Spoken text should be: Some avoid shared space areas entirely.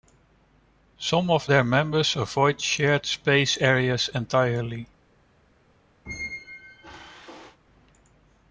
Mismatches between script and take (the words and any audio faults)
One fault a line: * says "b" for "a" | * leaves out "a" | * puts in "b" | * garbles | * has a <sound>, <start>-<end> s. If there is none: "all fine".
* puts in "of their members"
* has a squeak, 6.1-7.6 s